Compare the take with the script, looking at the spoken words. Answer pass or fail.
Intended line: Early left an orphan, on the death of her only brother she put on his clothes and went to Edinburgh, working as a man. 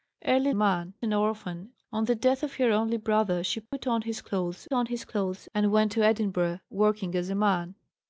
fail